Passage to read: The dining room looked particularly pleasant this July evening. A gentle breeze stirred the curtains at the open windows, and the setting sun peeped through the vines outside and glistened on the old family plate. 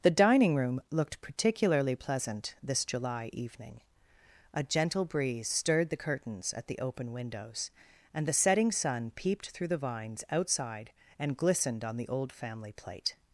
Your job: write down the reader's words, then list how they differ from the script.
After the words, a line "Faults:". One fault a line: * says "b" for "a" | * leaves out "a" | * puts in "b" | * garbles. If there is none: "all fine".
The dining room looked particularly pleasant this July evening. A gentle breeze stirred the curtains at the open windows, and the setting sun peeped through the vines outside and glistened on the old family plate.
Faults:
all fine